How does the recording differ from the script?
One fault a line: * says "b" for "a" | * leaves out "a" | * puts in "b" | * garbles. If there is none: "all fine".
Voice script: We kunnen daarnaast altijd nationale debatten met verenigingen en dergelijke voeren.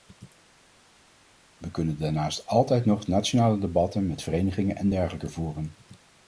* puts in "nog"